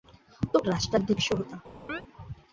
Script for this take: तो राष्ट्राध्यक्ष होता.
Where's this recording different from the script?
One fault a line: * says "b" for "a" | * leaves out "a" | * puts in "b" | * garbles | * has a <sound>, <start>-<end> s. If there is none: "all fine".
* has a chirp, 1.9-2.0 s